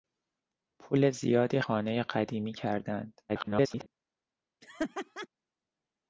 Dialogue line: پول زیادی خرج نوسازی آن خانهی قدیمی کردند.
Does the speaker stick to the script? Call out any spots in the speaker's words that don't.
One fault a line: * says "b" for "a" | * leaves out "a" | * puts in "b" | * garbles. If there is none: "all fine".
* leaves out "خرج نوسازی آن"
* garbles